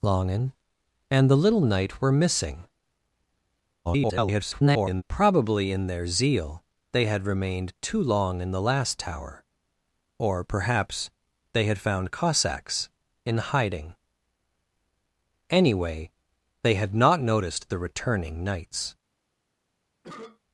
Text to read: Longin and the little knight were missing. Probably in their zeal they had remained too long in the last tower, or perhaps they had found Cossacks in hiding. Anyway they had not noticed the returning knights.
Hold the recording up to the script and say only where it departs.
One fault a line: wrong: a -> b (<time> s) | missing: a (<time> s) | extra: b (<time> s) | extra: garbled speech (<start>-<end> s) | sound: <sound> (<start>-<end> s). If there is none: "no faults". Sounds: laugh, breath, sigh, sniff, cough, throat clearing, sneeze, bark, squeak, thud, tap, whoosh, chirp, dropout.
extra: garbled speech (3.8-5.0 s)
sound: cough (20.0-20.4 s)